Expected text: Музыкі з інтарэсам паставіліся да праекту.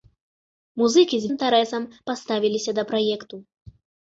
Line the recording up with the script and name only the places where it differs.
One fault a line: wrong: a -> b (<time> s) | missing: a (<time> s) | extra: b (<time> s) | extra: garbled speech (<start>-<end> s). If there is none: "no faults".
no faults